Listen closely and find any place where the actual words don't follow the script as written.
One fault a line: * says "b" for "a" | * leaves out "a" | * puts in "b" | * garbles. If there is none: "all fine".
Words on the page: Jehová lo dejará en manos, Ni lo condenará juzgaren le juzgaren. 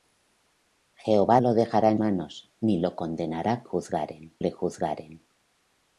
all fine